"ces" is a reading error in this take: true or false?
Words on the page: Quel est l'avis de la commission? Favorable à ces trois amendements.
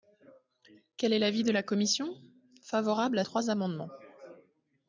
true